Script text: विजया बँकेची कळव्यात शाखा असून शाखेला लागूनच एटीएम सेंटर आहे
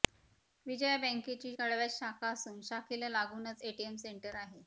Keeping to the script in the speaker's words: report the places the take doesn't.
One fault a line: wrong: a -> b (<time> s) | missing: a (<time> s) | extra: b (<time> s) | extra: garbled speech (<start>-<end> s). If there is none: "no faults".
no faults